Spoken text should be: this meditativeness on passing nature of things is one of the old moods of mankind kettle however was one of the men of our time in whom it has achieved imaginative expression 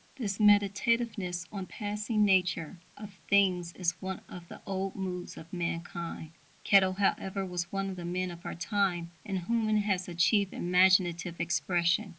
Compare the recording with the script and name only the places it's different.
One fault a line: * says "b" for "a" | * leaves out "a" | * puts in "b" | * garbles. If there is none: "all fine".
all fine